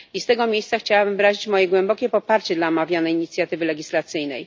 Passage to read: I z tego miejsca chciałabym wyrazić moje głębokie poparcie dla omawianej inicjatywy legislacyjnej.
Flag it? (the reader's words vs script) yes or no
no